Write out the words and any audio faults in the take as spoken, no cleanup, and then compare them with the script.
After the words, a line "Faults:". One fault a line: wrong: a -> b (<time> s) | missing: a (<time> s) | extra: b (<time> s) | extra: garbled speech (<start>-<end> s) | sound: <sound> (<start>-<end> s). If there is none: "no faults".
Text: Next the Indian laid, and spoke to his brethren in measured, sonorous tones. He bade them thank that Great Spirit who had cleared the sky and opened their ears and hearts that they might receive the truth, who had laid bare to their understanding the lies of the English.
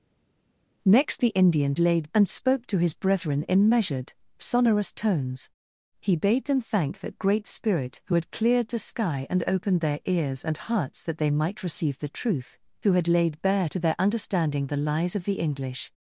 Next the Indian laid, and spoke to his brethren in measured, sonorous tones. He bade them thank that Great Spirit who had cleared the sky and opened their ears and hearts that they might receive the truth, who had laid bare to their understanding the lies of the English.
Faults:
no faults